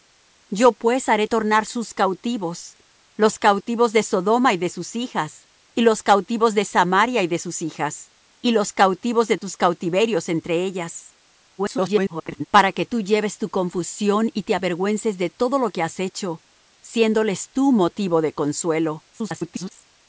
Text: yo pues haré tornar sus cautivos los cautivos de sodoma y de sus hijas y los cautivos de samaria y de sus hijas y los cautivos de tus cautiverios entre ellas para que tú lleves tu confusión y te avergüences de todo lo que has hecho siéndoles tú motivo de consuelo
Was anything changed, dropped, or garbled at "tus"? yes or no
no